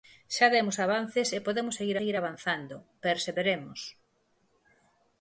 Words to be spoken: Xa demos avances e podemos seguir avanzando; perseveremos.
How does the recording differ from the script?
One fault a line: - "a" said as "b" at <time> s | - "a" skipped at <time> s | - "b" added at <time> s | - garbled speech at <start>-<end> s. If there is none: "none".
- "seguir" added at 2.0 s